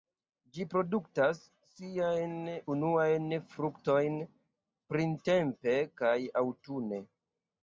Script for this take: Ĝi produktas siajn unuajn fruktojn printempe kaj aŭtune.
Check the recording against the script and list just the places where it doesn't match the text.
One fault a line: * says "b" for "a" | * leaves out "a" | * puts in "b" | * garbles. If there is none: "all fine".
all fine